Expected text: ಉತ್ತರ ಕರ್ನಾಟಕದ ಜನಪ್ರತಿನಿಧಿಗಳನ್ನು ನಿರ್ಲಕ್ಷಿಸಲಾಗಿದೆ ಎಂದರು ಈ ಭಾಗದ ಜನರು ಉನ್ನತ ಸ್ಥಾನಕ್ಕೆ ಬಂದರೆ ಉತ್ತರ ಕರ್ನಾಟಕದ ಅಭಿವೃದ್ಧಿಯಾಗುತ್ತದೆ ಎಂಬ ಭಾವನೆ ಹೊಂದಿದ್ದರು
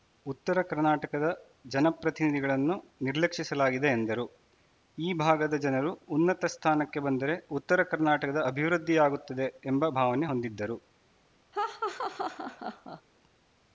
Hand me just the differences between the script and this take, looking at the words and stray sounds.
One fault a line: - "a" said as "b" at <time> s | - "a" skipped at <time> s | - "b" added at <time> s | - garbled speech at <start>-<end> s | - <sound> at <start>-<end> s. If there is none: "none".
- laugh at 11.5-13.0 s